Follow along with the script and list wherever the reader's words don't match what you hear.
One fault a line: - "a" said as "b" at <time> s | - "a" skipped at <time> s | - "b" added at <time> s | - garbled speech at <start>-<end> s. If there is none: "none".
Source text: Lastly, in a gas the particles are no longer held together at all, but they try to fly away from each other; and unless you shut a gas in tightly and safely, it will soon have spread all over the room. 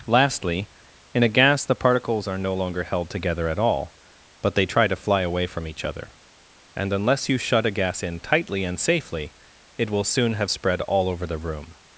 none